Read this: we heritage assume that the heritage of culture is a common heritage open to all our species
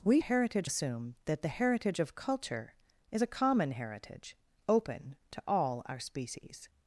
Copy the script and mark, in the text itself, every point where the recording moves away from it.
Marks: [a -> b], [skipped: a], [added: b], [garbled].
we heritage assume that the heritage of culture is a common heritage open to all our species